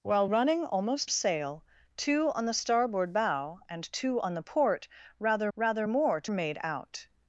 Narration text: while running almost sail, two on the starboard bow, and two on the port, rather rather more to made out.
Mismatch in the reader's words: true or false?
false